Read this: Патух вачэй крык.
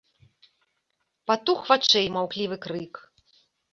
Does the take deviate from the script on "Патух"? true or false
false